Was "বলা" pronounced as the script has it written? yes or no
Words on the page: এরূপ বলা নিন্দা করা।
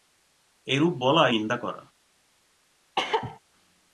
yes